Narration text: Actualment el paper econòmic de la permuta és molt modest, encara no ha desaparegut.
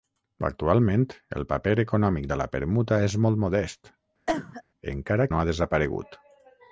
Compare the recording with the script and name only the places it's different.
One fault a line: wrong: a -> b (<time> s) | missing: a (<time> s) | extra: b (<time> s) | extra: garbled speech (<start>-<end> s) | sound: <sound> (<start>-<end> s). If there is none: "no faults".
sound: cough (4.3-4.6 s)